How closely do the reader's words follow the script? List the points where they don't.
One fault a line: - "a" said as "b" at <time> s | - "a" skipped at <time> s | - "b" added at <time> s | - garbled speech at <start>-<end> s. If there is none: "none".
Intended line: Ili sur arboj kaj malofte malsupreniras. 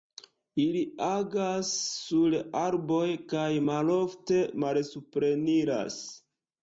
- "agas" added at 1.1 s